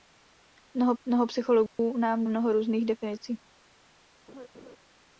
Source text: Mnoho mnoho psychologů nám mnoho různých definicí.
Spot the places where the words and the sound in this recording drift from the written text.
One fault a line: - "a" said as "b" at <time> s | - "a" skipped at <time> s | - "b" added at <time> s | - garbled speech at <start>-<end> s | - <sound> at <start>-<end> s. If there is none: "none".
- dropout at 1.7-1.8 s
- laugh at 4.3-4.8 s